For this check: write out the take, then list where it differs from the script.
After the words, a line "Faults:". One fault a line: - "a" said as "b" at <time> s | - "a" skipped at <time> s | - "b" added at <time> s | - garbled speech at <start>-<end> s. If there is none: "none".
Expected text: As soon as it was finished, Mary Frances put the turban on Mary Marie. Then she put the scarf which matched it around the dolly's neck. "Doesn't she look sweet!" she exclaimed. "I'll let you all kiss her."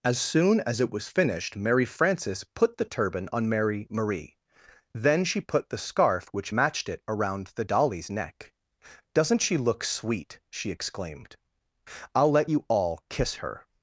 As soon as it was finished, Mary Frances put the turban on Mary Marie. Then she put the scarf which matched it around the dolly's neck. "Doesn't she look sweet!" she exclaimed. "I'll let you all kiss her."
Faults:
none